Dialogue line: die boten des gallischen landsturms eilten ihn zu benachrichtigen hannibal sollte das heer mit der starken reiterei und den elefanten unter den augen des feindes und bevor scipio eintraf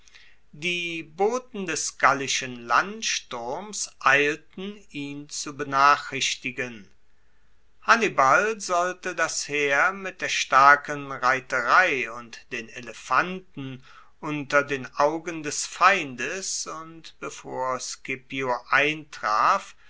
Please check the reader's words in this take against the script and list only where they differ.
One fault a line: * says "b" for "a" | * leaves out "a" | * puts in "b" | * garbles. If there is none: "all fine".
all fine